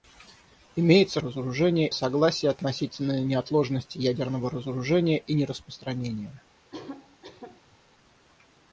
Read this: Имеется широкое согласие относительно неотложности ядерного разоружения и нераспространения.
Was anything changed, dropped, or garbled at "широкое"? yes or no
yes